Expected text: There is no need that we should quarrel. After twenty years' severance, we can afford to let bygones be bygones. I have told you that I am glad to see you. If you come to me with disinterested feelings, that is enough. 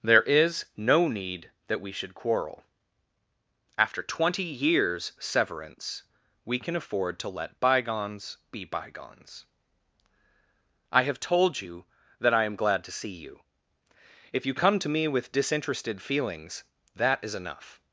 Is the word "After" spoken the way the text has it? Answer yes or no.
yes